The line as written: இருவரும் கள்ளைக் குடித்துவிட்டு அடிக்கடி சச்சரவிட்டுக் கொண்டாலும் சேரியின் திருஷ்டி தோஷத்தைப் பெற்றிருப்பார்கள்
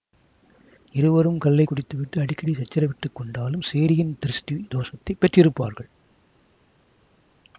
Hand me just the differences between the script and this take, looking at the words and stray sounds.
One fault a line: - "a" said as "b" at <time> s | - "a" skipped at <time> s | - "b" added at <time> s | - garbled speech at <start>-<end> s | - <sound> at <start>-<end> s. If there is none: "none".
none